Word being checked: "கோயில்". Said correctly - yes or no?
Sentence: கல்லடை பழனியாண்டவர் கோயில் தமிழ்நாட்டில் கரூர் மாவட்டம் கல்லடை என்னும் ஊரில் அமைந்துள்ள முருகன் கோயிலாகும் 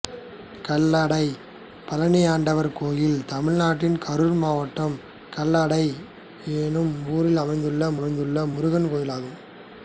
yes